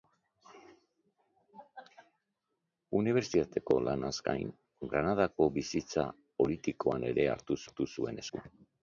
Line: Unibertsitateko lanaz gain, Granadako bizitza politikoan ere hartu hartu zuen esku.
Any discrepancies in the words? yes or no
no